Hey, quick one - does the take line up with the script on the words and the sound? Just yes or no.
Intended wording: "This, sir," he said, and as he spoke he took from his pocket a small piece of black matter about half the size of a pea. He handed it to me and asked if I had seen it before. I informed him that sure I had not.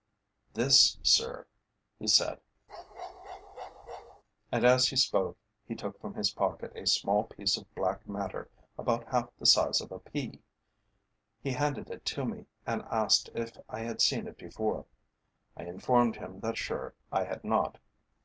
no